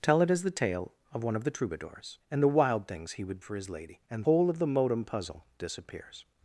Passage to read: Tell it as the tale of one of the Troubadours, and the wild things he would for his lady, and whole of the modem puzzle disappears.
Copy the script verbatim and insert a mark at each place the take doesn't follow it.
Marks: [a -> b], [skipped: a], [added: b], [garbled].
Tell it as the tale of one of the Troubadours, and the wild things he would for his lady, and whole of the modem puzzle disappears.